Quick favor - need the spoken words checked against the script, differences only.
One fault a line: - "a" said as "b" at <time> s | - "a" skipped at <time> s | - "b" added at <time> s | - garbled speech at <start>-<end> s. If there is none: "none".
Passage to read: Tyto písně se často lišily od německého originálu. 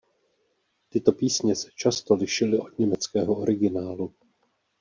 none